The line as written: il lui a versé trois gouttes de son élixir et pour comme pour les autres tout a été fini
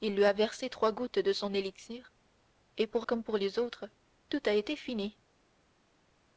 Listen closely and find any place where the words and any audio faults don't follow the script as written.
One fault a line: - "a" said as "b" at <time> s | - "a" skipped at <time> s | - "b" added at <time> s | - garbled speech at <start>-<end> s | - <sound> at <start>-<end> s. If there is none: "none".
none